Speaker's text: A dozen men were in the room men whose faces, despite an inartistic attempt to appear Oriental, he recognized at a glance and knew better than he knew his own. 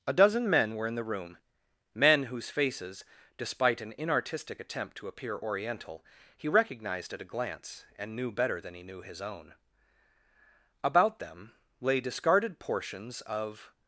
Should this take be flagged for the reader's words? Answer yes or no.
yes